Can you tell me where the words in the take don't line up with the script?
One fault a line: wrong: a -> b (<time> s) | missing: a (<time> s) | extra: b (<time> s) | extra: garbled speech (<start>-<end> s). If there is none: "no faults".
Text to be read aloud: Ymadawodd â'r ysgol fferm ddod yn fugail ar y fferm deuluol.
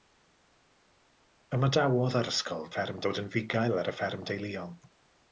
no faults